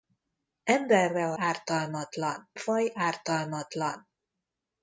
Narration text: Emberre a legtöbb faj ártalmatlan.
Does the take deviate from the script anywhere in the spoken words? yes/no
yes